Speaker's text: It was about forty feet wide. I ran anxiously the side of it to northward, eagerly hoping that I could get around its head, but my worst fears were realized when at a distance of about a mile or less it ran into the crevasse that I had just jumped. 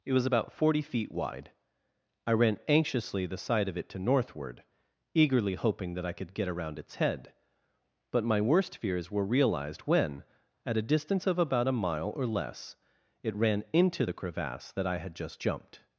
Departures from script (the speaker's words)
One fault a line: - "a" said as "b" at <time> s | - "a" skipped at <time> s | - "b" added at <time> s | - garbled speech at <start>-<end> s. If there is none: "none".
none